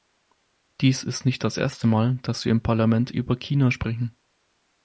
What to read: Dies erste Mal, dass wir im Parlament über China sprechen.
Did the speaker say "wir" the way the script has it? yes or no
yes